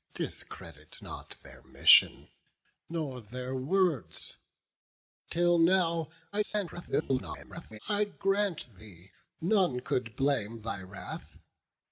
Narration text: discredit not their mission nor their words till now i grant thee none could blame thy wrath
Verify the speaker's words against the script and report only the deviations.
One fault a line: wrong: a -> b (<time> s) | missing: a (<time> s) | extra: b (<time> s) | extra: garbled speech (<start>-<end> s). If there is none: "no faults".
extra: garbled speech (6.3-7.8 s)